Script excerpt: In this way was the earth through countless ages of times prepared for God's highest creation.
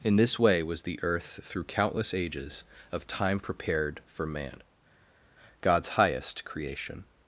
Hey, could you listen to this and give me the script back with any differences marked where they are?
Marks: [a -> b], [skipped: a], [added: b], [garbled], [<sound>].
In this way was the earth through countless ages of [times -> time] prepared for [added: man] God's highest creation.